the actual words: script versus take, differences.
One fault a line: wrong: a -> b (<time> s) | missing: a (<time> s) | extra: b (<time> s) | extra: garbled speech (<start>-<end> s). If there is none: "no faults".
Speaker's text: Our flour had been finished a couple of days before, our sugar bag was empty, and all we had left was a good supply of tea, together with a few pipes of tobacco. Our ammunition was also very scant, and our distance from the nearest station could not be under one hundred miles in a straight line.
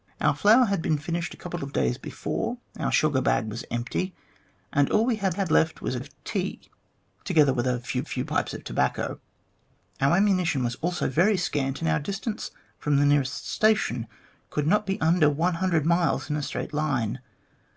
extra: had (5.3 s)
missing: good supply (6.0 s)
extra: few (8.0 s)